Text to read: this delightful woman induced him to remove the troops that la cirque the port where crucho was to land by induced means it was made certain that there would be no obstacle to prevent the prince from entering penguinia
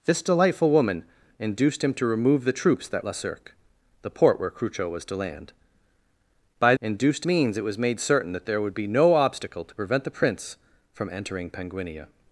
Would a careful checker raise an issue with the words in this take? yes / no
no